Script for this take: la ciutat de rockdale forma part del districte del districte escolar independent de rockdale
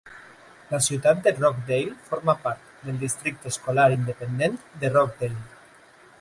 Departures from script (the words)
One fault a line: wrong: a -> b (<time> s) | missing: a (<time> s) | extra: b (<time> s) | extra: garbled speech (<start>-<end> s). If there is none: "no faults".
missing: del districte (3.5 s)